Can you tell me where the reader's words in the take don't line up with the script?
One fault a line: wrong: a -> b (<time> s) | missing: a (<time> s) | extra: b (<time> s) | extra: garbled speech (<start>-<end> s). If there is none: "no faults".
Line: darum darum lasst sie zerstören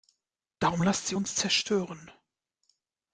missing: darum (0.8 s)
extra: uns (1.1 s)